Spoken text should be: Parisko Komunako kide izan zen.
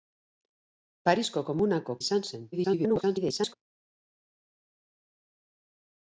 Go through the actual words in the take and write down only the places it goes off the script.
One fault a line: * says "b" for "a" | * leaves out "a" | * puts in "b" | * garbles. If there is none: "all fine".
* leaves out "kide"
* garbles